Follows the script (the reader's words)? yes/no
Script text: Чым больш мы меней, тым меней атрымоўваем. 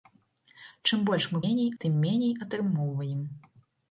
yes